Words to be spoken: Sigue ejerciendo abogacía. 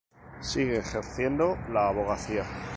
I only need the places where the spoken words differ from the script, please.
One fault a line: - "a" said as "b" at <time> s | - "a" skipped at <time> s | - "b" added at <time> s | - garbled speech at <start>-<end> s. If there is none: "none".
- "la" added at 1.7 s